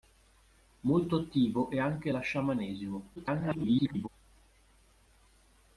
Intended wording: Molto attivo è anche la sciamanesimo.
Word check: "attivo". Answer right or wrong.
right